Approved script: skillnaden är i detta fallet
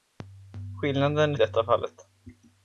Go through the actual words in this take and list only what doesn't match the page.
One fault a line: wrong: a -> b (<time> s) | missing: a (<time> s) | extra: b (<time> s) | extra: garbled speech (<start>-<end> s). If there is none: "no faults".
no faults